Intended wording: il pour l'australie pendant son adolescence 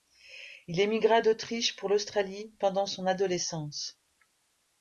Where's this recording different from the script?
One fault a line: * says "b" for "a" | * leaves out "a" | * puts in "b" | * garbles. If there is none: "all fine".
* puts in "émigra d'autriche"